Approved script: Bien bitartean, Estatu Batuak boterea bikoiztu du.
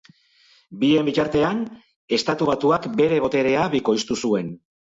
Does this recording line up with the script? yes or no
no